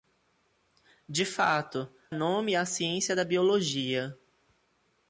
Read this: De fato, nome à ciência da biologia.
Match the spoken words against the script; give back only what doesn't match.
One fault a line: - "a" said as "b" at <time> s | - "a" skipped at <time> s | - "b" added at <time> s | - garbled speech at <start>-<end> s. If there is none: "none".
none